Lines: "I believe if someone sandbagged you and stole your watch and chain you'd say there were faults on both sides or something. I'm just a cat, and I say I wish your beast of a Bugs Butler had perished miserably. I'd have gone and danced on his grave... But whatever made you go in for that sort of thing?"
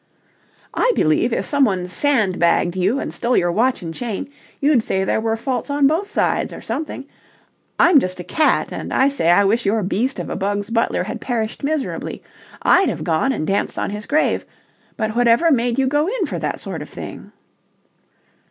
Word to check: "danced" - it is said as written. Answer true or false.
true